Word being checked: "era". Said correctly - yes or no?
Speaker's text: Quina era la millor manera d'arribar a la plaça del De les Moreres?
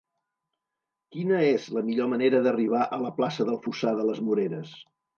no